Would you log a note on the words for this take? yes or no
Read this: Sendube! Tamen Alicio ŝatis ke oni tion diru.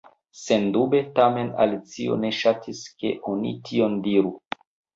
yes